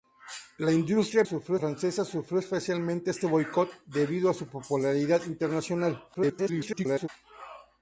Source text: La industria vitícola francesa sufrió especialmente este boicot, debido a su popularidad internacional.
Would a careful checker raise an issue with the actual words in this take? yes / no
yes